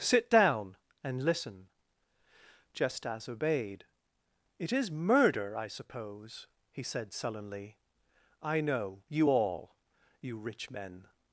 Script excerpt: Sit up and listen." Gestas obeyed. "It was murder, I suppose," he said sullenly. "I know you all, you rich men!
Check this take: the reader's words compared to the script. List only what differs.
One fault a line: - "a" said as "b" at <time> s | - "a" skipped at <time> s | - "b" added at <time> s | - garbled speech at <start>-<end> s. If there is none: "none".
- "up" said as "down" at 0.3 s
- "was" said as "is" at 4.7 s